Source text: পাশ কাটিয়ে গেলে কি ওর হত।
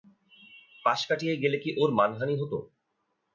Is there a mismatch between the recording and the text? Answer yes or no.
yes